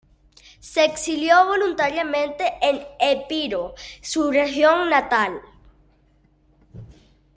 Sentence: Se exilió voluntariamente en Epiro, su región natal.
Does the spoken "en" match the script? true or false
true